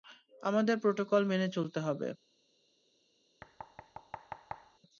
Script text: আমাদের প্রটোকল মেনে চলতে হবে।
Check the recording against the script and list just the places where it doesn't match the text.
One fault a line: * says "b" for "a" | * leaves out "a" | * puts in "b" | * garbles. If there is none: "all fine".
all fine